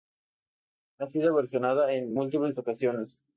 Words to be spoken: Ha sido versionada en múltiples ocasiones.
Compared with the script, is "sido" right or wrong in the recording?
right